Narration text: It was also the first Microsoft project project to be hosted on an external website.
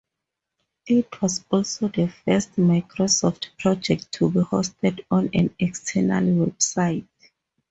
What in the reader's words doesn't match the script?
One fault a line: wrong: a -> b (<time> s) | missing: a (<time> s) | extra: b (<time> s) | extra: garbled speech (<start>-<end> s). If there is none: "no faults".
missing: project (4.1 s)